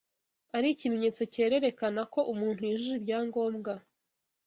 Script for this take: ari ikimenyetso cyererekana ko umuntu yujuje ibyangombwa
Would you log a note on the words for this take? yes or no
no